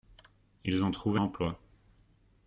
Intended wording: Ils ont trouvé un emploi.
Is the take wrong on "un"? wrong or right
wrong